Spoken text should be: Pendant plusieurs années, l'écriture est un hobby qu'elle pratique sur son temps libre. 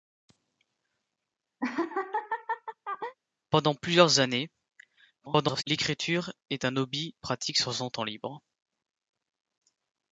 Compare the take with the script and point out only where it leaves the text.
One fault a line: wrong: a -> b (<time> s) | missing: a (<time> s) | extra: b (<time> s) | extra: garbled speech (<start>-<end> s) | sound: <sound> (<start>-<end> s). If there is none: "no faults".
sound: laugh (1.6-3.1 s)
extra: garbled speech (5.2-5.6 s)
missing: qu'elle (7.1 s)